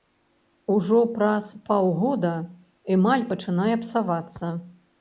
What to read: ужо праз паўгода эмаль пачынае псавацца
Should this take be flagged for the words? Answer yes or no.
no